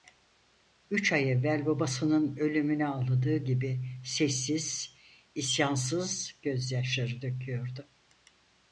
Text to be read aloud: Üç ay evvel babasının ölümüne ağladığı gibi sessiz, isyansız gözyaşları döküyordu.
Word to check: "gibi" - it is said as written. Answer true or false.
true